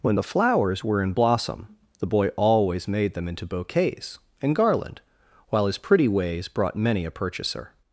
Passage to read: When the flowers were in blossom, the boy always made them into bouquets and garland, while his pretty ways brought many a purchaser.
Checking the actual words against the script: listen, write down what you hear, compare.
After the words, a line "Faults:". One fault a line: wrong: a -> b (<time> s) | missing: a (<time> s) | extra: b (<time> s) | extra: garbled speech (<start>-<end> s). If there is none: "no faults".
When the flowers were in blossom, the boy always made them into bouquets and garland, while his pretty ways brought many a purchaser.
Faults:
no faults